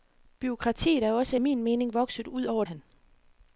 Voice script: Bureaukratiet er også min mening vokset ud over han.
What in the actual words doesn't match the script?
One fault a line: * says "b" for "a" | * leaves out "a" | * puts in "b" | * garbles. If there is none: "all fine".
all fine